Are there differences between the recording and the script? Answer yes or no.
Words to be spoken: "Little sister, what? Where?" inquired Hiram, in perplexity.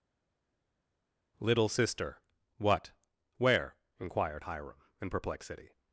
no